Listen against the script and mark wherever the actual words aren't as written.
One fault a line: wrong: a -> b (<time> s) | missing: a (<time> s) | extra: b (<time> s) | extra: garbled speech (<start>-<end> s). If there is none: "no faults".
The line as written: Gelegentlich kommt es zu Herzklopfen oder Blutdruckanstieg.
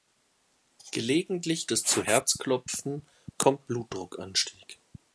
missing: kommt (1.7 s)
wrong: oder -> kommt (3.4 s)